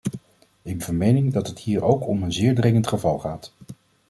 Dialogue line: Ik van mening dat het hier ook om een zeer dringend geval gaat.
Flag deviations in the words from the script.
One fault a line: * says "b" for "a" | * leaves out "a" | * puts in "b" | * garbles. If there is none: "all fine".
all fine